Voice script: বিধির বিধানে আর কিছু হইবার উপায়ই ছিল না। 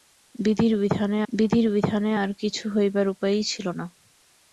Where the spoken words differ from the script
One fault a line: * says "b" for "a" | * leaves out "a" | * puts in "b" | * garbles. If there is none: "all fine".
* puts in "বিধির বিধানে"